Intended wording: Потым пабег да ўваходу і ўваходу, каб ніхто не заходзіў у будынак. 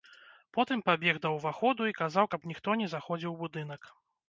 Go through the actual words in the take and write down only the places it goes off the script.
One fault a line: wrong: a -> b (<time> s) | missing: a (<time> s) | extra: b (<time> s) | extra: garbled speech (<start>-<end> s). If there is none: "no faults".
wrong: ўваходу -> казаў (2.0 s)